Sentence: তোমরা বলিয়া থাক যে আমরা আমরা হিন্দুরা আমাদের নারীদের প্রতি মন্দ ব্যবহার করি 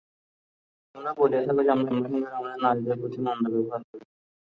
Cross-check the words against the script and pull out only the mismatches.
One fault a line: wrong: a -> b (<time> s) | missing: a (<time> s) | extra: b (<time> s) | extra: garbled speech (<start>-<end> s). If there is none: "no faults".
no faults